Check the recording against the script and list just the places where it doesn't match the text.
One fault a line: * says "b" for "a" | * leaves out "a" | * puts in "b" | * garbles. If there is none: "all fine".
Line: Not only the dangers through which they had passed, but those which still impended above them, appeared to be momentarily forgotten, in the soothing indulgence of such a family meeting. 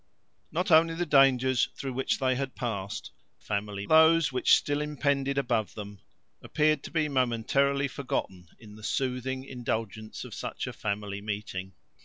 * says "family" for "but"